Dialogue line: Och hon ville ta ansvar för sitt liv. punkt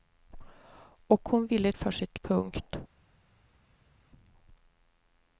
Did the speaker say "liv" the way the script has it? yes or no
no